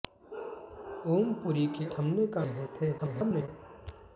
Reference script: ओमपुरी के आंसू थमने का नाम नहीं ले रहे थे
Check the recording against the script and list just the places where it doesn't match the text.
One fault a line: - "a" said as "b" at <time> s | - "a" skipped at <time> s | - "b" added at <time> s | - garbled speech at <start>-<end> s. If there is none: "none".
- "आंसू" skipped at 1.9 s
- "नाम नहीं ले" skipped at 2.4 s
- garbled speech at 3.0-3.5 s